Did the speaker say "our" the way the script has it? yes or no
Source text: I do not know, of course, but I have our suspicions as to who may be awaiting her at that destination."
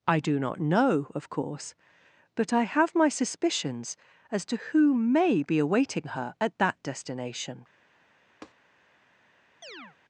no